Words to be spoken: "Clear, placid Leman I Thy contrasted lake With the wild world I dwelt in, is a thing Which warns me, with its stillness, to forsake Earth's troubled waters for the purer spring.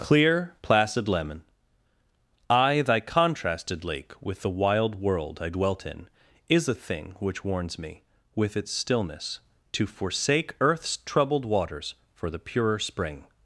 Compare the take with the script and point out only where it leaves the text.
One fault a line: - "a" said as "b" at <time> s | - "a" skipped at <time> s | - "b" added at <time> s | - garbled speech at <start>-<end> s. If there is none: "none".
none